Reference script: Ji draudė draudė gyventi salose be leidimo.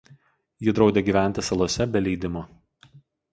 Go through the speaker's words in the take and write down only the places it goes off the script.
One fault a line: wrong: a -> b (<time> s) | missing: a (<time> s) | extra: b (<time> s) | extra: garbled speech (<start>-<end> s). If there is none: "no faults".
missing: draudė (1.0 s)